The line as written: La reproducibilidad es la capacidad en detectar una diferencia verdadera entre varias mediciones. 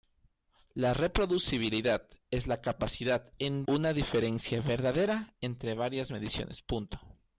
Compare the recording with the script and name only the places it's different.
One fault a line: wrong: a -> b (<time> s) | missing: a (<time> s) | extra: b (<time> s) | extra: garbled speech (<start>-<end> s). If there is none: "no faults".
missing: detectar (3.6 s)